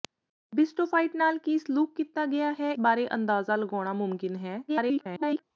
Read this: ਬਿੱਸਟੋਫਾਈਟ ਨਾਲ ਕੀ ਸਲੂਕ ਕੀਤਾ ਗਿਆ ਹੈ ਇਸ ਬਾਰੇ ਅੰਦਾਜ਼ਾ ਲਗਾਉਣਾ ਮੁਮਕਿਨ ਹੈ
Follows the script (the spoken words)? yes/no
no